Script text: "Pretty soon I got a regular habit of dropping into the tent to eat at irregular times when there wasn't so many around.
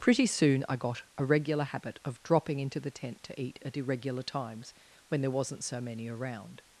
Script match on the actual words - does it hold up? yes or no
yes